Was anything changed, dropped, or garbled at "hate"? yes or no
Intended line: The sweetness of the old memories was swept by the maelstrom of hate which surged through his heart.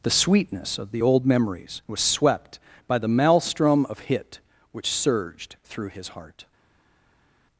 yes